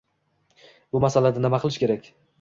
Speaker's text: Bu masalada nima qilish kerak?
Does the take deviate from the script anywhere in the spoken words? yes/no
no